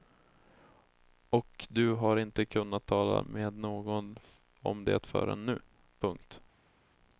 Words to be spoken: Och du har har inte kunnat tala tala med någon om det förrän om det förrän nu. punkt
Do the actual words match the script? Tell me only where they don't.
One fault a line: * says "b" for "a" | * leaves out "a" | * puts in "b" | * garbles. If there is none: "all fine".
* leaves out "har"
* leaves out "tala"
* leaves out "om det förrän"